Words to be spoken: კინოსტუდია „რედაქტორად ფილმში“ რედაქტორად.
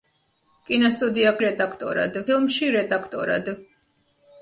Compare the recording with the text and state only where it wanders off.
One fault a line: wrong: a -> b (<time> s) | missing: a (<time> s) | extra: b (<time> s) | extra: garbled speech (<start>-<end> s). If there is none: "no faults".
no faults